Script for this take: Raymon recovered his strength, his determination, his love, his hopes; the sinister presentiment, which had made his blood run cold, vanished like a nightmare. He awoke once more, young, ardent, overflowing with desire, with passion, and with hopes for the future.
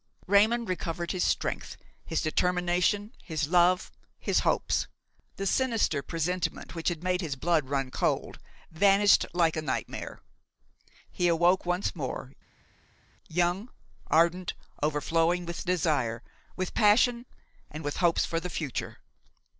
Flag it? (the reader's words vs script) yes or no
no